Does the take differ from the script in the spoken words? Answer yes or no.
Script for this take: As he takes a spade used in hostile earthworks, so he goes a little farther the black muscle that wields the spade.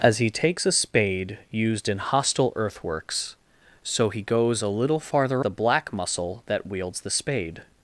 no